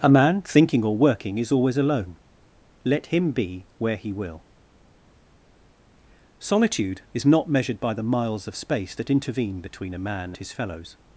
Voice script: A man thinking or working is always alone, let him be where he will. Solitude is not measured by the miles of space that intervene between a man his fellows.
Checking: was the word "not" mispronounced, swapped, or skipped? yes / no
no